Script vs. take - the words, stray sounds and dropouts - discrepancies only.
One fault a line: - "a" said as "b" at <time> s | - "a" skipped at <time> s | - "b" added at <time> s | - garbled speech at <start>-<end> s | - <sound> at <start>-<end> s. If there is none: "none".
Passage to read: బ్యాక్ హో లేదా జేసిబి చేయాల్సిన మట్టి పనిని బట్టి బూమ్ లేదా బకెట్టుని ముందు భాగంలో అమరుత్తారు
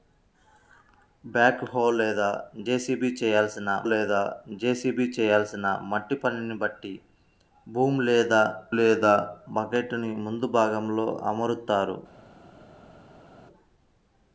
- "లేదా జేసిబి చేయాల్సిన" added at 3.9 s
- "లేదా" added at 8.7 s